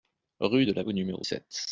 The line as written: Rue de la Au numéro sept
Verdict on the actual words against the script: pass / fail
pass